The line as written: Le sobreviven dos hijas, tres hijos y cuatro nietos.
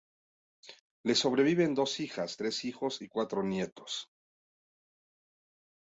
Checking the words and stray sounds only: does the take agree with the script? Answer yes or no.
yes